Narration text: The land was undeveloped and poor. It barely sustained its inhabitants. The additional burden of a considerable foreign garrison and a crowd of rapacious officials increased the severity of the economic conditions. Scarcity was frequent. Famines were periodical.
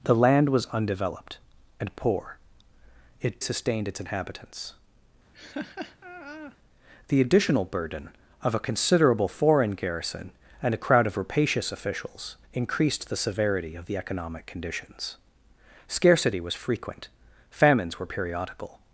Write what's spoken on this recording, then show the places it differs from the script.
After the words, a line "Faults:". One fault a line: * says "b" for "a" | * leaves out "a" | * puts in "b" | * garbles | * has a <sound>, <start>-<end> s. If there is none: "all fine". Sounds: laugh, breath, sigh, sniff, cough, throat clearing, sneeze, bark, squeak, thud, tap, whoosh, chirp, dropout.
The land was undeveloped and poor. It sustained its inhabitants. The additional burden of a considerable foreign garrison and a crowd of rapacious officials increased the severity of the economic conditions. Scarcity was frequent. Famines were periodical.
Faults:
* leaves out "barely"
* has a laugh, 5.3-6.6 s